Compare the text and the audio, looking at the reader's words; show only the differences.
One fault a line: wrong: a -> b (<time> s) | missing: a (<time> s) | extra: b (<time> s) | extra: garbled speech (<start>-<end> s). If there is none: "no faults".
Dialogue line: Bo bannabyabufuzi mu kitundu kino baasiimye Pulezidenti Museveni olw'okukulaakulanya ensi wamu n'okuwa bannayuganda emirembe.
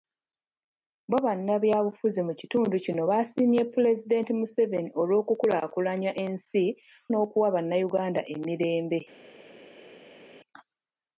missing: wamu (6.6 s)